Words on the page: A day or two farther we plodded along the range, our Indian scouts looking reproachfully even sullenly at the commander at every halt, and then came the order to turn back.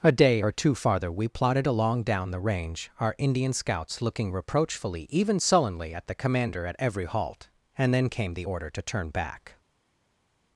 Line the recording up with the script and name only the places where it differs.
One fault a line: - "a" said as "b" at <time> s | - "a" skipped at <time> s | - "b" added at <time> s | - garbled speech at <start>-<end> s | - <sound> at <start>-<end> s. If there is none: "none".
- "down" added at 2.0 s